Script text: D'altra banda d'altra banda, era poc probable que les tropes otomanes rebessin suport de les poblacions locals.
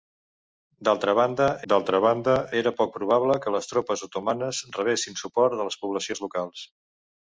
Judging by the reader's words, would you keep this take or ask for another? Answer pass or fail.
pass